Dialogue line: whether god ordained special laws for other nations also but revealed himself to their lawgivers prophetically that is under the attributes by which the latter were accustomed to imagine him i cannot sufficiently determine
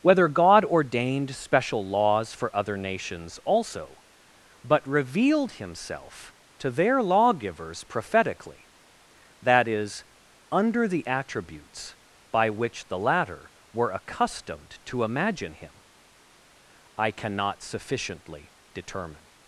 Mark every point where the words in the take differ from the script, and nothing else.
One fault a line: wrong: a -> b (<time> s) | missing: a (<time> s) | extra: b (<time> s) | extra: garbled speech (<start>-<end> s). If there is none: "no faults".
no faults